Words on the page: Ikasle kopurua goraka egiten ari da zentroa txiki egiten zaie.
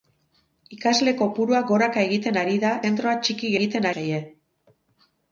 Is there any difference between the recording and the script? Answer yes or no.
no